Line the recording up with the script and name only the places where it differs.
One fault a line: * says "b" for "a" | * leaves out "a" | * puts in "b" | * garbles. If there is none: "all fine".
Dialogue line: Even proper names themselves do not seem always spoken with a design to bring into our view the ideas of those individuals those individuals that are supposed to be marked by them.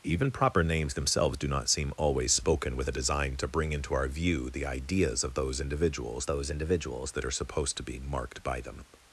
all fine